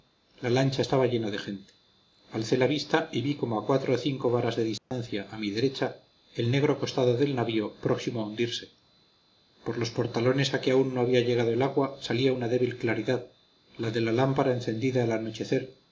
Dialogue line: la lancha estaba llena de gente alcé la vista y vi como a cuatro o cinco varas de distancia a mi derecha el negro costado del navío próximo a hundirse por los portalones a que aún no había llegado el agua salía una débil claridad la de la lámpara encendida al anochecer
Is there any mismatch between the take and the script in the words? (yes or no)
no